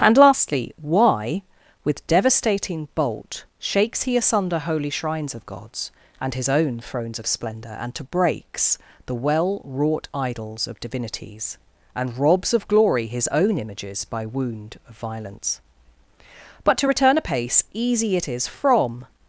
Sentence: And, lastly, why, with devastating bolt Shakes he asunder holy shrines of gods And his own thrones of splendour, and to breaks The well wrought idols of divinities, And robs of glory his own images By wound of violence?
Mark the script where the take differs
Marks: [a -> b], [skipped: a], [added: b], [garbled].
And, lastly, why, with devastating bolt Shakes he asunder holy shrines of gods And his own thrones of splendour, and to breaks The well wrought idols of divinities, And robs of glory his own images By wound of violence? [added: But to return apace Easy it is from]